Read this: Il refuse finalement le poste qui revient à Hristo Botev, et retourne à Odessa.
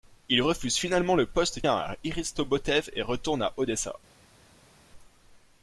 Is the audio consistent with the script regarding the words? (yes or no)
no